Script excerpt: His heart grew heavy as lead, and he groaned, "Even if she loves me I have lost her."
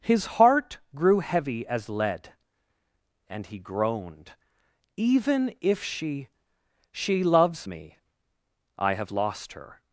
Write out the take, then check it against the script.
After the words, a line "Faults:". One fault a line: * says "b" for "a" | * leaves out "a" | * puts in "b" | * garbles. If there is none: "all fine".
His heart grew heavy as lead, and he groaned, "Even if she she loves me I have lost her."
Faults:
* puts in "she"